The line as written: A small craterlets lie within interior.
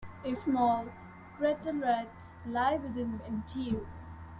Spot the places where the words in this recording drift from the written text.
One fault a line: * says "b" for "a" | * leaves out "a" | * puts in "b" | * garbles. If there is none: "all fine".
all fine